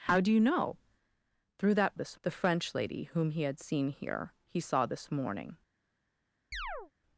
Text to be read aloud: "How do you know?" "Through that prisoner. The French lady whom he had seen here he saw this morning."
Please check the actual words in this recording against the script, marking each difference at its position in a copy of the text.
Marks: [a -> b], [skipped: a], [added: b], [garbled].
"How do you know?" "Through that [prisoner. -> this] The French lady whom he had seen here he saw this morning."